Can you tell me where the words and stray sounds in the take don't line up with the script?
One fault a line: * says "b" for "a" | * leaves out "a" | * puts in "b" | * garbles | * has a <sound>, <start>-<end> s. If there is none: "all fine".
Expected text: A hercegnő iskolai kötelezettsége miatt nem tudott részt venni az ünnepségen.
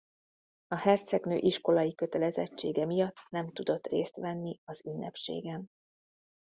all fine